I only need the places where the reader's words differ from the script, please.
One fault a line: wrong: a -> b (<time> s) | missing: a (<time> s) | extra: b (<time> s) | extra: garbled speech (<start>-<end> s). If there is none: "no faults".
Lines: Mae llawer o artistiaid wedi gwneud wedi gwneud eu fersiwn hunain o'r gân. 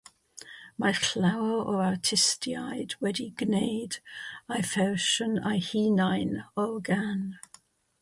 wrong: wedi gwneud -> eu fersiwn (4.6 s)
missing: fersiwn (5.7 s)